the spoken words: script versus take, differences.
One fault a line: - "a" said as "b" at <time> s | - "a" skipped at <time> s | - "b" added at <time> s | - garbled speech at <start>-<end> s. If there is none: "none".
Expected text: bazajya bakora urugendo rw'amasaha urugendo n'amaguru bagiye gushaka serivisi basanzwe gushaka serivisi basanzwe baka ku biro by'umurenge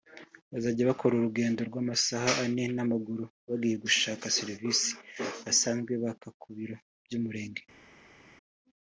- "urugendo" said as "ane" at 2.4 s
- "gushaka serivisi basanzwe" skipped at 5.9 s